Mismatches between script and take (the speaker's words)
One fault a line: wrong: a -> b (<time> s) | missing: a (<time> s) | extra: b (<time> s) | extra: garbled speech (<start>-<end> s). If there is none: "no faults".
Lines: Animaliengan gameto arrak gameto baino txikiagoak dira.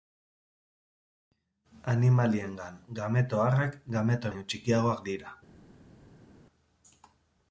no faults